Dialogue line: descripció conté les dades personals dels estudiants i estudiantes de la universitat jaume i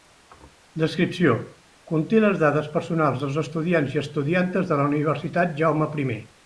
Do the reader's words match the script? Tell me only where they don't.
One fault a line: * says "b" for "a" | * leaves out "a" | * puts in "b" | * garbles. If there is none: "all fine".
all fine